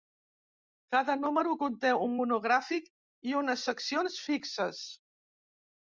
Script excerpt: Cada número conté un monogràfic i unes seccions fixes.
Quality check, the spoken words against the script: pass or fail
pass